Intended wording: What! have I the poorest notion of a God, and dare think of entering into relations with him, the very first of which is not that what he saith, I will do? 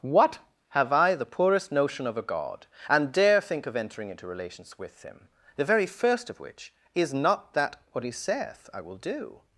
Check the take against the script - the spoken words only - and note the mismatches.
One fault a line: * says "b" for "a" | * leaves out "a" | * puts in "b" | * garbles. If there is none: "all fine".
all fine